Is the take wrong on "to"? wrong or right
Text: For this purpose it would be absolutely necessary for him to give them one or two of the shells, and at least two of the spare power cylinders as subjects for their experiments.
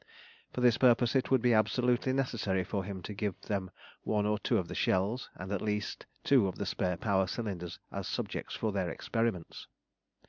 right